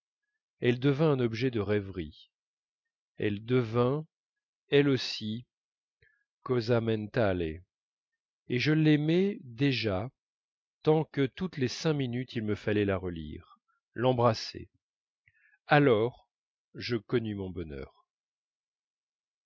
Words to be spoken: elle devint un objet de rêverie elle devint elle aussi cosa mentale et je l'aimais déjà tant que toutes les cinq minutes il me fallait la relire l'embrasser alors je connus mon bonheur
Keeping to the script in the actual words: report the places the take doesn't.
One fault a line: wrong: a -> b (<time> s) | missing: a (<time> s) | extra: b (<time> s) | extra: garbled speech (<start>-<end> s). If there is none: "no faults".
no faults